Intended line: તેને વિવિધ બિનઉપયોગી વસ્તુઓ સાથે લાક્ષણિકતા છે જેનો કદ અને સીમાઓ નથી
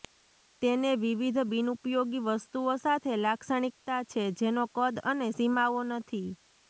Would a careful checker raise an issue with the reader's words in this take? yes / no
no